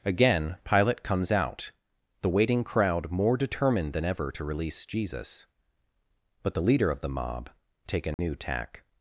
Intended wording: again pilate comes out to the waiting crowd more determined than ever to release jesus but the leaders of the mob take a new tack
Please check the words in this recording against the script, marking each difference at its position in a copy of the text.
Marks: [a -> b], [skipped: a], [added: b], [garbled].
again pilate comes out [skipped: to] the waiting crowd more determined than ever to release jesus but the [leaders -> leader] of the mob take a new tack